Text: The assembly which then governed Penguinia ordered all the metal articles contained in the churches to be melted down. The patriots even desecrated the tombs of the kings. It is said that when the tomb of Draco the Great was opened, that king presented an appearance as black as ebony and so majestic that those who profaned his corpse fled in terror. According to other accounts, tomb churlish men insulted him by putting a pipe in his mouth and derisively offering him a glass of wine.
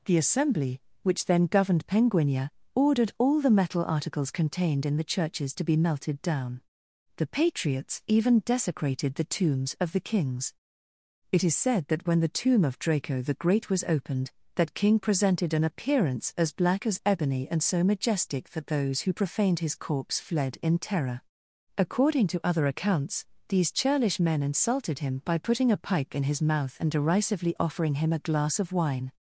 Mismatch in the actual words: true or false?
true